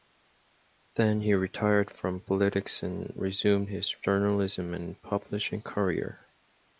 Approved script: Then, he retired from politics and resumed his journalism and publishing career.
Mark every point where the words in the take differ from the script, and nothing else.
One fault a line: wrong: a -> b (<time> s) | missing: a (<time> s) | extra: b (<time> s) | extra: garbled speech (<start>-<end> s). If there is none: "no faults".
no faults